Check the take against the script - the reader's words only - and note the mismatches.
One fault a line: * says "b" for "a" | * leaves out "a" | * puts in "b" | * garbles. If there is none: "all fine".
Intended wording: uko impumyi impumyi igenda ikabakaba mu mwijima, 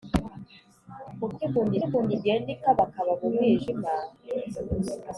all fine